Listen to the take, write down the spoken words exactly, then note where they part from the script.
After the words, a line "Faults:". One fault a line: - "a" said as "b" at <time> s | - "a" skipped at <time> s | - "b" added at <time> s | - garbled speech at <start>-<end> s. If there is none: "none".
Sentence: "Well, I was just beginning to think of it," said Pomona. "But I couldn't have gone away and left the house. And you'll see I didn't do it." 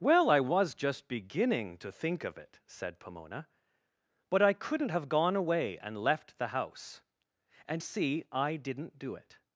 "Well, I was just beginning to think of it," said Pomona. "But I couldn't have gone away and left the house. And see I didn't do it."
Faults:
- "you'll" skipped at 7.8 s